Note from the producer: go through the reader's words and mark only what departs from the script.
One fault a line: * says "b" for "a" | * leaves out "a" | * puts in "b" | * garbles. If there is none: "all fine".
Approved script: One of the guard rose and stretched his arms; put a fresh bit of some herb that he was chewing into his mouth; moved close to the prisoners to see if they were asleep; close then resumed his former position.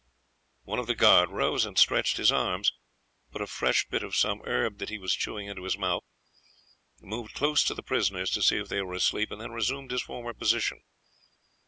* says "and" for "close"